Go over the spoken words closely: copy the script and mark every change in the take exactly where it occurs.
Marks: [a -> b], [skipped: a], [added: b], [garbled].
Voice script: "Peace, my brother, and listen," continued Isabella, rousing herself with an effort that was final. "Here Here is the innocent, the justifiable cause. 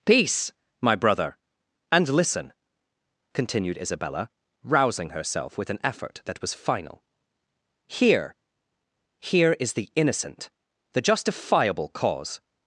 "Peace, my brother, and listen," continued Isabella, rousing herself with an effort that was final. "Here Here is the innocent, the justifiable cause.